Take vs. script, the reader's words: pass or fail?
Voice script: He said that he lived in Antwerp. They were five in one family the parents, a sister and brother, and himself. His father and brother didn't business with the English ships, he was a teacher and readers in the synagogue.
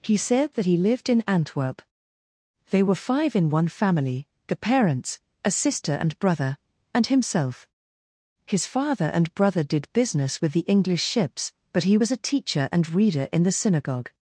fail